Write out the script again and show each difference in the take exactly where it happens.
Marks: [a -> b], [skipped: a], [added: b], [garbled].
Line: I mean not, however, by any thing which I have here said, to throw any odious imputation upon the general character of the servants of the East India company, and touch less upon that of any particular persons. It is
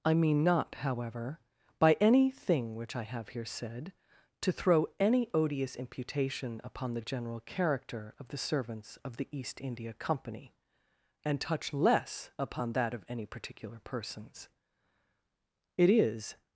I mean not, however, by any thing which I have here said, to throw any odious imputation upon the general character of the servants of the East India company, and touch less upon that of any particular persons. It is